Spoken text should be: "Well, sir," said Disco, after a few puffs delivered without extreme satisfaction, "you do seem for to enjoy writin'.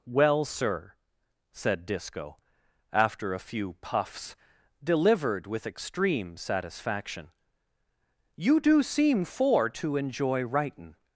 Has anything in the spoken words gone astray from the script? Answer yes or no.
yes